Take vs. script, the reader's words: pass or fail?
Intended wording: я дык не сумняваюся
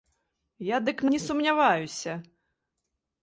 pass